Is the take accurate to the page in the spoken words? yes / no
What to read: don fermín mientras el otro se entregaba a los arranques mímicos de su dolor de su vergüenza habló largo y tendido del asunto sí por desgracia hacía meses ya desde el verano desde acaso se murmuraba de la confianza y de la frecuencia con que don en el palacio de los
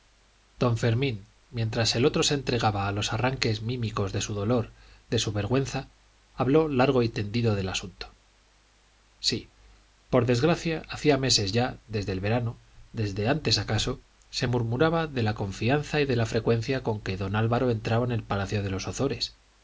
no